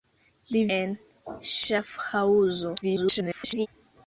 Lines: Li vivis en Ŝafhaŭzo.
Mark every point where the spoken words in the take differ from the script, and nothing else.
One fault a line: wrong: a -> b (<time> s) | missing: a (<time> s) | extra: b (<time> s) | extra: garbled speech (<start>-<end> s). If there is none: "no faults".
missing: vivis (0.6 s)
extra: garbled speech (2.8-3.7 s)